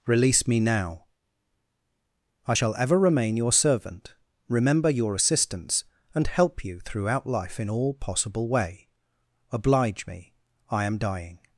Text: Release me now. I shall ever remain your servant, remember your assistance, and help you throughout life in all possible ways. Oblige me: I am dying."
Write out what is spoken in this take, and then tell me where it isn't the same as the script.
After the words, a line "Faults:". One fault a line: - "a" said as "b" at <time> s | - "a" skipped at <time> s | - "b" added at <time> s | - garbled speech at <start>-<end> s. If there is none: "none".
Release me now. I shall ever remain your servant, remember your assistance, and help you throughout life in all possible way. Oblige me: I am dying."
Faults:
- "ways" said as "way" at 8.5 s